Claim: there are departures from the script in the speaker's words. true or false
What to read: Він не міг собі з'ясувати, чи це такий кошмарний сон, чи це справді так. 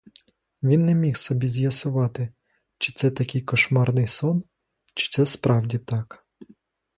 false